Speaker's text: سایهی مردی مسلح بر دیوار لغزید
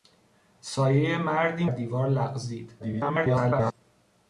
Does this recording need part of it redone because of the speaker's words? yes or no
yes